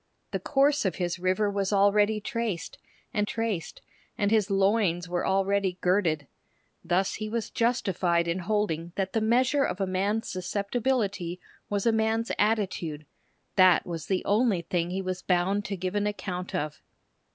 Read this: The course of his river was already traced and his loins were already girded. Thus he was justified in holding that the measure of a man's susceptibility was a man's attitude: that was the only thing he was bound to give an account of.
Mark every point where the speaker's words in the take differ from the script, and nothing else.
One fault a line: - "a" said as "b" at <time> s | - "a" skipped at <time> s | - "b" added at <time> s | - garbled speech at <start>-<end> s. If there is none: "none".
- "traced and" added at 3.2 s